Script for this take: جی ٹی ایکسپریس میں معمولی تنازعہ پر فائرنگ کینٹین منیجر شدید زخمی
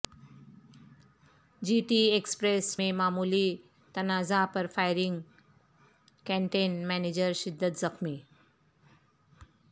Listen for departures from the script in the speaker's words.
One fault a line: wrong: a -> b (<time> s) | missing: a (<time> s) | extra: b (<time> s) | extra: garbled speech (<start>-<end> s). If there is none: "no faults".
no faults